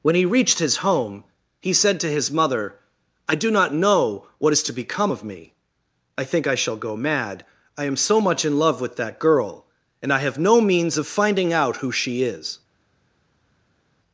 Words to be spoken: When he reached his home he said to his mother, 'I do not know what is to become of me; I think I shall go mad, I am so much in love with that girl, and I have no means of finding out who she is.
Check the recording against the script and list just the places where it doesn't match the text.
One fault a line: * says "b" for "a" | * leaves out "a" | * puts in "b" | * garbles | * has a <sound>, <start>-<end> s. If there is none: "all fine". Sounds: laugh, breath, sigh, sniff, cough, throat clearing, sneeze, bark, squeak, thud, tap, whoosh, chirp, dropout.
all fine